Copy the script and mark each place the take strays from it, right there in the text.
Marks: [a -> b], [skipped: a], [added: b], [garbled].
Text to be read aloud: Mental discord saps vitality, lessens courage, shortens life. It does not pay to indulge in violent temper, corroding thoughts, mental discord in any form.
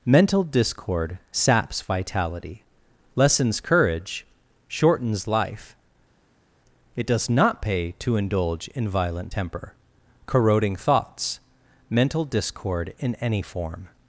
Mental discord saps vitality, lessens courage, shortens life. It does not pay to indulge in violent temper, corroding thoughts, mental discord in any form.